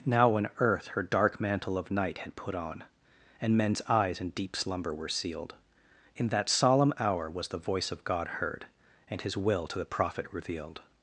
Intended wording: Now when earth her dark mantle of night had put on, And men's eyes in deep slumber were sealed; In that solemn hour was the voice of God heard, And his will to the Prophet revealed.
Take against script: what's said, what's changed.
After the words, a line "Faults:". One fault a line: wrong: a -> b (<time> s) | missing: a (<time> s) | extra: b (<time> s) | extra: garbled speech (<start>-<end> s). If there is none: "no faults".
Now when earth her dark mantle of night had put on, And men's eyes in deep slumber were sealed; In that solemn hour was the voice of God heard, And his will to the Prophet revealed.
Faults:
no faults